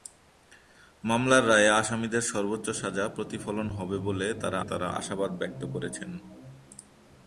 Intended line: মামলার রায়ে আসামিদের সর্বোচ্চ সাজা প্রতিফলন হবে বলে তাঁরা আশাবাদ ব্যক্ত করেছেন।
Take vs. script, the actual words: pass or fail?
fail